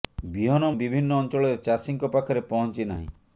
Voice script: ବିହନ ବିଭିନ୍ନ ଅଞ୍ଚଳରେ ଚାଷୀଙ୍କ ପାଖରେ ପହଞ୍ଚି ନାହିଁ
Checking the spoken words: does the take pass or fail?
pass